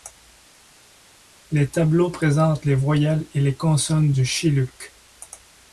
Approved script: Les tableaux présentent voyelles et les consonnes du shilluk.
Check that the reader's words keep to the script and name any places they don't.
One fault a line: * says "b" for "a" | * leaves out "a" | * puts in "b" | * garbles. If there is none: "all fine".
* puts in "les"